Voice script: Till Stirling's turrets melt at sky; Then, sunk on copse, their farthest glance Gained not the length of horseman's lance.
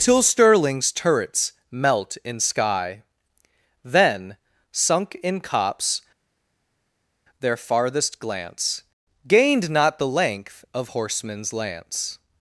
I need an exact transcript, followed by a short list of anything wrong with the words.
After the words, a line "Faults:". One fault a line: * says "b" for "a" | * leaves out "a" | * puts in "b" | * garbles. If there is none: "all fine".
Till Stirling's turrets melt in sky; Then, sunk in copse, their farthest glance Gained not the length of horseman's lance.
Faults:
* says "in" for "at"
* says "in" for "on"